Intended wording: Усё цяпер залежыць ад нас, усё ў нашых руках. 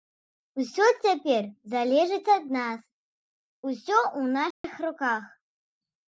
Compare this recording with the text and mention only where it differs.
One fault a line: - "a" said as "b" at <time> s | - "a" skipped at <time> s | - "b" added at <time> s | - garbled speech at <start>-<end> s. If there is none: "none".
none